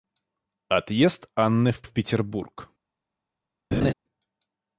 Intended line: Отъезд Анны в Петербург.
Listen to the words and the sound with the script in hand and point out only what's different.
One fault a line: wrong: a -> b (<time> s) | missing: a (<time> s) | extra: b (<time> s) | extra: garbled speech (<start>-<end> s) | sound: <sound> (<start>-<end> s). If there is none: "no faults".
extra: в (1.8 s)
sound: laugh (3.7-3.9 s)